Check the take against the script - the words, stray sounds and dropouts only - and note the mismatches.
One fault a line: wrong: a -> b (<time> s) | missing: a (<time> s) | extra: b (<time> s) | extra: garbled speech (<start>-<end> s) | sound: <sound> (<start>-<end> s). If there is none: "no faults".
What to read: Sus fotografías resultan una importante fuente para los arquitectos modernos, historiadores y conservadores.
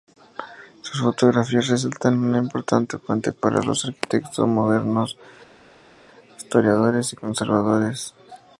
no faults